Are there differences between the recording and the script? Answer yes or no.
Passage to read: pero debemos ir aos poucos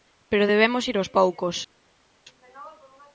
no